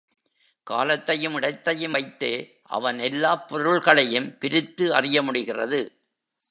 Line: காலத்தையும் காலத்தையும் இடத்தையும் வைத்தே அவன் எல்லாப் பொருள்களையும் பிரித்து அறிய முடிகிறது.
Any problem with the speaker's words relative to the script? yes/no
yes